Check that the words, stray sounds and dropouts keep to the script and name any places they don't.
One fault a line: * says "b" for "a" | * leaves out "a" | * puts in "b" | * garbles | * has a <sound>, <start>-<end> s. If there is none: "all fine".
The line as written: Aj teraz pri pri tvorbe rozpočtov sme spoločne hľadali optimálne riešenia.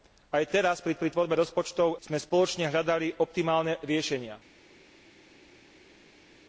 all fine